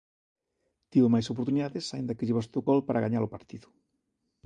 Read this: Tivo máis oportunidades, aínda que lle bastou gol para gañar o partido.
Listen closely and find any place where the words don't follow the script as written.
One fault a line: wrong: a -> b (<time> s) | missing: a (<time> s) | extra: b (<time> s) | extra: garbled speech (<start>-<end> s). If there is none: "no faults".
no faults